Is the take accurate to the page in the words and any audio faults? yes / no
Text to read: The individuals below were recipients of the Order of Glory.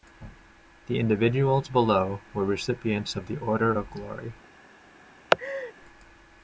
no